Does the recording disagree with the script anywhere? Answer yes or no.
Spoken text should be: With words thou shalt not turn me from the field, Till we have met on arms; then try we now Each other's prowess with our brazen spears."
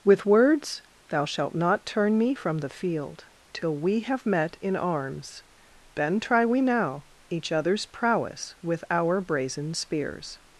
yes